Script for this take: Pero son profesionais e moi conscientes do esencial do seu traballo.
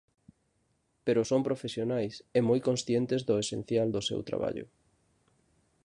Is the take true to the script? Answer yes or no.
yes